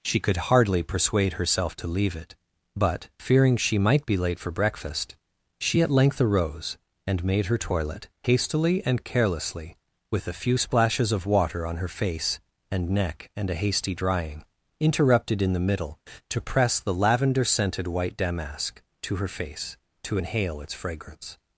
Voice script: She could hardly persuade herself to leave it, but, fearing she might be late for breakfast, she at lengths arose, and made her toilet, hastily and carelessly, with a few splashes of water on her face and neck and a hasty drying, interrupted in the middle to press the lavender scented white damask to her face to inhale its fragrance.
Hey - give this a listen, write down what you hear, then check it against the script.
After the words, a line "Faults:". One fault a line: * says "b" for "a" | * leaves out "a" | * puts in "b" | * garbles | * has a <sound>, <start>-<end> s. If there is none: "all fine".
She could hardly persuade herself to leave it, but, fearing she might be late for breakfast, she at length arose, and made her toilet, hastily and carelessly, with a few splashes of water on her face and neck and a hasty drying, interrupted in the middle to press the lavender scented white damask to her face to inhale its fragrance.
Faults:
* says "length" for "lengths"